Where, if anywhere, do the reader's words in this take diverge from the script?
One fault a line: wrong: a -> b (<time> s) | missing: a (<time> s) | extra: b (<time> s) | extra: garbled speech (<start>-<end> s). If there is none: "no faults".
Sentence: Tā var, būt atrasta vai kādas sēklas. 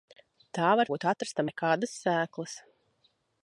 no faults